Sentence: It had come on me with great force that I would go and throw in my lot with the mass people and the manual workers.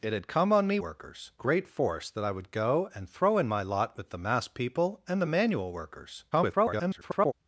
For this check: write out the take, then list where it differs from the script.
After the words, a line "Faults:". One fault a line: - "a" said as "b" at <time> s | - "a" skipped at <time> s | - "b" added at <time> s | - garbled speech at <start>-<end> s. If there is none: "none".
It had come on me workers great force that I would go and throw in my lot with the mass people and the manual workers. [garbled]
Faults:
- "with" said as "workers" at 0.8 s
- garbled speech at 6.3-7.3 s